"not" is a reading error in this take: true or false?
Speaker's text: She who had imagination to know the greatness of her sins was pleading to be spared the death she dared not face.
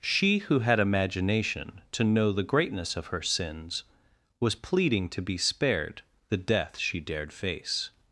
true